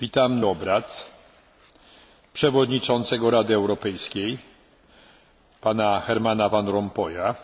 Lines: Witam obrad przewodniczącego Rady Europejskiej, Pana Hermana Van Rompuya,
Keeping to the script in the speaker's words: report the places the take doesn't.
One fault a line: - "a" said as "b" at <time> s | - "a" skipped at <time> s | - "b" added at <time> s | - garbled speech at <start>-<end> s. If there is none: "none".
none